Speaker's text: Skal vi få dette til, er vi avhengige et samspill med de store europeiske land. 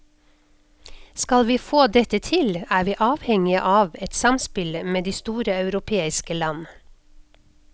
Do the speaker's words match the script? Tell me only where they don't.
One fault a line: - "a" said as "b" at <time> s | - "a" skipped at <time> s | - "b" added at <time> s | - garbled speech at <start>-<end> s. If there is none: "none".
- "av" added at 3.7 s